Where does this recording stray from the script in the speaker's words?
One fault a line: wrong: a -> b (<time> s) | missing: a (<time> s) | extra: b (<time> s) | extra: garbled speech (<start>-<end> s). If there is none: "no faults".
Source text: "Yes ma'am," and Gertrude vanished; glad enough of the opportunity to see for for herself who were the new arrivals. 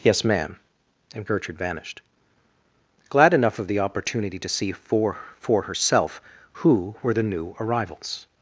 no faults